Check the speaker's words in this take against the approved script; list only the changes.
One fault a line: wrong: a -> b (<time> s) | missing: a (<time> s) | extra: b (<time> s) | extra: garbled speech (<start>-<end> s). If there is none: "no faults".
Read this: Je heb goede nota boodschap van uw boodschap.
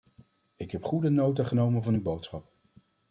wrong: Je -> Ik (0.6 s)
wrong: boodschap -> genomen (1.4 s)